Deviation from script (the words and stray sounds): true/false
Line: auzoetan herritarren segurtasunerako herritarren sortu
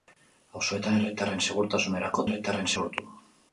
false